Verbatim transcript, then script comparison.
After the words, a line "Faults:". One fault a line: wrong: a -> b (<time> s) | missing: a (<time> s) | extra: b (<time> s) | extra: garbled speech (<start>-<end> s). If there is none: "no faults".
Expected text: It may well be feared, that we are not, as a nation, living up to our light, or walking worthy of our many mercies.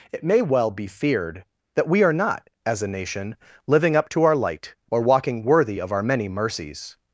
It may well be feared, that we are not, as a nation, living up to our light, or walking worthy of our many mercies.
Faults:
no faults